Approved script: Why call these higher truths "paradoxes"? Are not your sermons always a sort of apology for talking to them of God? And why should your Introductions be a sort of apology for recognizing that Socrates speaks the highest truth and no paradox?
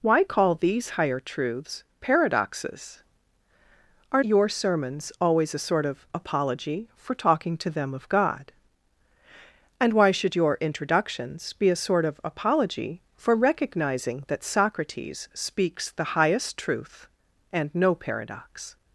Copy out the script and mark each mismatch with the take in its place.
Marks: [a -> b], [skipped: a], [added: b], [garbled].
Why call these higher truths "paradoxes"? Are [skipped: not] your sermons always a sort of apology for talking to them of God? And why should your Introductions be a sort of apology for recognizing that Socrates speaks the highest truth and no paradox?